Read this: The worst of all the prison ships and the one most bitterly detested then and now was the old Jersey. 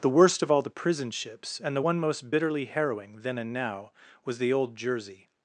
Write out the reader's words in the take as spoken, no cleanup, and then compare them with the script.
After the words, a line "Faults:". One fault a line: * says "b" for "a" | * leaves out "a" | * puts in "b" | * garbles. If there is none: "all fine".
The worst of all the prison ships and the one most bitterly harrowing then and now was the old Jersey.
Faults:
* says "harrowing" for "detested"